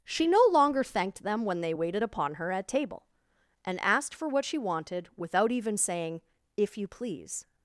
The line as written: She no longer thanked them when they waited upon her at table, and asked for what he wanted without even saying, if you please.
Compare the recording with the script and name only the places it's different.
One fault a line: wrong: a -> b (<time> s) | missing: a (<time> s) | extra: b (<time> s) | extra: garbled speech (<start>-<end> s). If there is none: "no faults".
wrong: he -> she (4.4 s)